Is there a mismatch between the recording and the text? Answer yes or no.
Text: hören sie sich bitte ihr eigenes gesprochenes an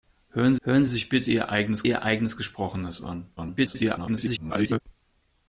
yes